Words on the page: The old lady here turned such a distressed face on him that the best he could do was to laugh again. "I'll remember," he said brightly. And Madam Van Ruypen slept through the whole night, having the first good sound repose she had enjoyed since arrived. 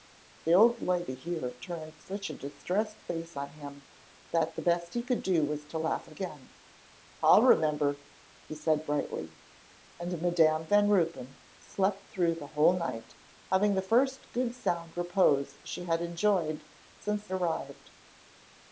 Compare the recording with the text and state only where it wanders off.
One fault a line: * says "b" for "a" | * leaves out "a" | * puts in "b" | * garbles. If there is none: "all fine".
all fine